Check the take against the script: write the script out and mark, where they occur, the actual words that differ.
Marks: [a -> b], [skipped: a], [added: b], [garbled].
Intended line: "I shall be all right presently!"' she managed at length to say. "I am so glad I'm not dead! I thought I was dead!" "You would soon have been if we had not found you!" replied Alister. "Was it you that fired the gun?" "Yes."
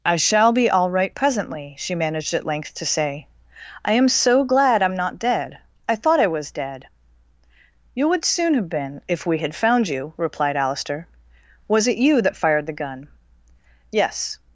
"I shall be all right presently!"' she managed at length to say. "I am so glad I'm not dead! I thought I was dead!" "You would soon have been if we had [skipped: not] found you!" replied Alister. "Was it you that fired the gun?" "Yes."